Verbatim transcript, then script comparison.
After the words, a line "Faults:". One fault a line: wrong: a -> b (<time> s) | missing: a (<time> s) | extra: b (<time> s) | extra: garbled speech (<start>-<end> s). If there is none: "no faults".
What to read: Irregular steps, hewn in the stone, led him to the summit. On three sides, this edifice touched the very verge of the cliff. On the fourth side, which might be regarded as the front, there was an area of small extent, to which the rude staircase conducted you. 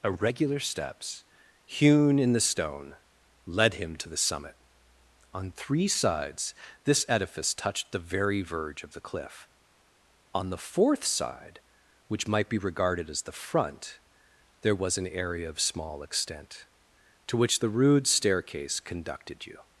Irregular steps, hewn in the stone, led him to the summit. On three sides, this edifice touched the very verge of the cliff. On the fourth side, which might be regarded as the front, there was an area of small extent, to which the rude staircase conducted you.
Faults:
no faults